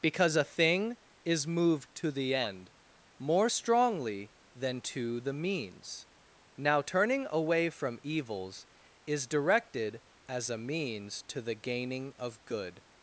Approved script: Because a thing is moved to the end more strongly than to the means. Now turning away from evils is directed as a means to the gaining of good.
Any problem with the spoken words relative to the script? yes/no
no